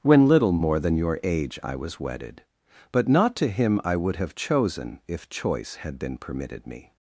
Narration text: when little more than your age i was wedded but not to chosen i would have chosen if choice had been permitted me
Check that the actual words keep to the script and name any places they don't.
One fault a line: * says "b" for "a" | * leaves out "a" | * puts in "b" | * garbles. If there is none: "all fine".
* says "him" for "chosen"